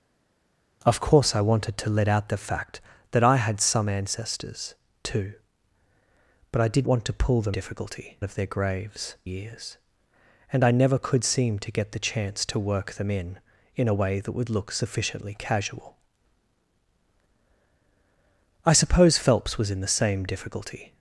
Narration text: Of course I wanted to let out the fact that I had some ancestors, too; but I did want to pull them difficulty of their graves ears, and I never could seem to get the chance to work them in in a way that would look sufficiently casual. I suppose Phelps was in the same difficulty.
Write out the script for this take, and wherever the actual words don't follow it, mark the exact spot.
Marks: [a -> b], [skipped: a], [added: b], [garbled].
Of course I wanted to let out the fact that I had some ancestors, too; but I did want to pull them difficulty of their graves ears, and I never could seem to get the chance to work them in in a way that would look sufficiently casual. I suppose Phelps was in the same difficulty.